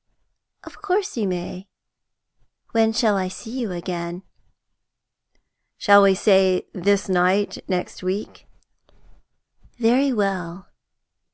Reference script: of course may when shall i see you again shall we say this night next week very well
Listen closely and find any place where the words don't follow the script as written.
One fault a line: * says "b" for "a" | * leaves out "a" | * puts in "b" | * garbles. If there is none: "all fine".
* puts in "you"